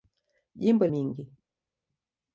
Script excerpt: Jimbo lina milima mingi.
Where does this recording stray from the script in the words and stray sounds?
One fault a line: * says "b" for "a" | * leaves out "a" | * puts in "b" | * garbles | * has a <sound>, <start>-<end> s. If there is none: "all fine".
* leaves out "lina milima"